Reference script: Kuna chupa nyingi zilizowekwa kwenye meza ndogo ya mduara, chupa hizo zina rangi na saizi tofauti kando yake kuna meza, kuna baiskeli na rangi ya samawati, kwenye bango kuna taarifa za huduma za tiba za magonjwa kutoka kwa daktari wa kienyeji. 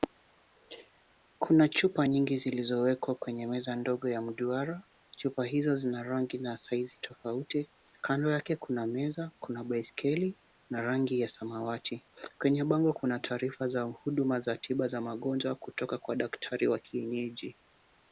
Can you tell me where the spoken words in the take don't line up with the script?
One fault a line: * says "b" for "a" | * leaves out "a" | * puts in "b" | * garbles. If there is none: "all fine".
all fine